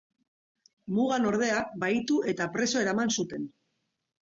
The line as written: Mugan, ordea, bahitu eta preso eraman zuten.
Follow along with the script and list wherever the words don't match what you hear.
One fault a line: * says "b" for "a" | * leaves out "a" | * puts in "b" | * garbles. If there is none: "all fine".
all fine